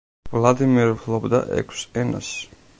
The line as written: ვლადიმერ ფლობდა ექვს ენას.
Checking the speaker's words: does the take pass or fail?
pass